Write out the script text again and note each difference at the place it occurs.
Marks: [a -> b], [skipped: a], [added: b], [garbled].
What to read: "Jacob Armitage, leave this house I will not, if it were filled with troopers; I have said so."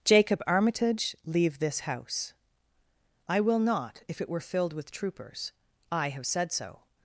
"Jacob Armitage, leave this house I will not, if it were filled with troopers; I have said so."